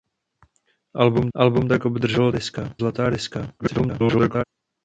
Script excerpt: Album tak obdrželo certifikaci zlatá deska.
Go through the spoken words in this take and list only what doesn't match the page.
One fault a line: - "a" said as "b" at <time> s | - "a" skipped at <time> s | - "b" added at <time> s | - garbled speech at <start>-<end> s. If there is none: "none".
- "album" added at 1.4 s
- "certifikaci" said as "deska" at 2.3 s
- garbled speech at 3.6-4.4 s